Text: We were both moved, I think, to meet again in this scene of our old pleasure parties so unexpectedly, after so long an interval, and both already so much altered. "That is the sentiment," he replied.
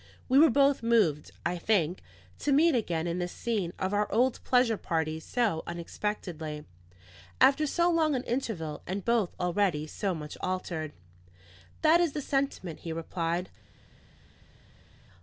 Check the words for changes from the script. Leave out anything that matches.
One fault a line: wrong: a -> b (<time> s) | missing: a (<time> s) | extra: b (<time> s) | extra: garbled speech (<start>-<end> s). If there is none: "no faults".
no faults